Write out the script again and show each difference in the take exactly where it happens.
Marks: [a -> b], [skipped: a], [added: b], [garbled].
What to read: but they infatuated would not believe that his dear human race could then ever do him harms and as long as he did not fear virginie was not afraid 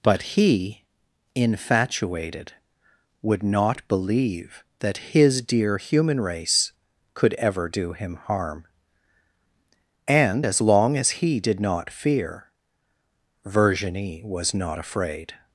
but [they -> he] infatuated would not believe that his dear human race could [skipped: then] ever do him [harms -> harm] and as long as he did not fear virginie was not afraid